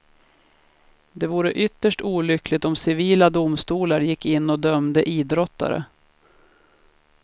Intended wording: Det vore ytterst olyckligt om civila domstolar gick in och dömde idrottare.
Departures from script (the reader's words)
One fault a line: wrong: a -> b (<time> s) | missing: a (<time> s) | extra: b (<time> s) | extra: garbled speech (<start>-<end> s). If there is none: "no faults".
no faults